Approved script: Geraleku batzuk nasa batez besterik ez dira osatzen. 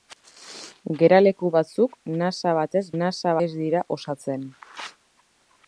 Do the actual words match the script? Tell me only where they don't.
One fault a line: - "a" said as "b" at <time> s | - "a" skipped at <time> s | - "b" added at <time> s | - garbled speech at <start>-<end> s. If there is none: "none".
- "besterik" said as "nasa" at 3.0 s